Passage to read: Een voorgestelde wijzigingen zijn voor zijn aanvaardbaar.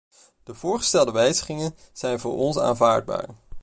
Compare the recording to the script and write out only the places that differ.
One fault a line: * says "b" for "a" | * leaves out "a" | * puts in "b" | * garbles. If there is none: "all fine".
* says "De" for "Een"
* says "ons" for "zijn"